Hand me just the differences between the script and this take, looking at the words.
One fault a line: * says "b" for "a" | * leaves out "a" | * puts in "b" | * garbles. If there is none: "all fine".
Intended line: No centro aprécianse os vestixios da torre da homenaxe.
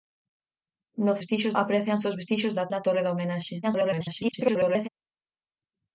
* says "vestixios" for "centro"
* puts in "da"
* garbles